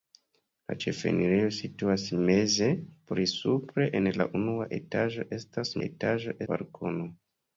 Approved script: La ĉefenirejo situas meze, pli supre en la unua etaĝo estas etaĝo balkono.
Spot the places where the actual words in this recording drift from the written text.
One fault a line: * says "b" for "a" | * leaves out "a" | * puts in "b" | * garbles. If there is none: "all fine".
all fine